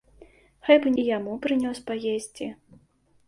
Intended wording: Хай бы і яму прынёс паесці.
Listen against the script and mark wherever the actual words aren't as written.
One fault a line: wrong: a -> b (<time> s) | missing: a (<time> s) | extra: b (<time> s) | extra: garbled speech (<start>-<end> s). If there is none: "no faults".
no faults